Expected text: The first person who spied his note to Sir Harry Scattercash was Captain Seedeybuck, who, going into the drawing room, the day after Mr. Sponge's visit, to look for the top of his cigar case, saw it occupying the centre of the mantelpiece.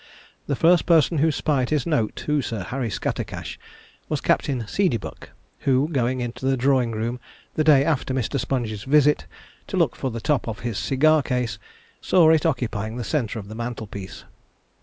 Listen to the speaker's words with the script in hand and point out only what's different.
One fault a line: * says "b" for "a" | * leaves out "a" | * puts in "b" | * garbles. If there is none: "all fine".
all fine